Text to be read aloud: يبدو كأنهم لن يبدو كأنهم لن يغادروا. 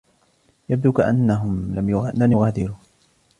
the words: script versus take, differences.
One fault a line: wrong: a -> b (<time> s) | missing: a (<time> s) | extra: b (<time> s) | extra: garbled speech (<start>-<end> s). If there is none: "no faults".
missing: يبدو كأنهم لن (2.3 s)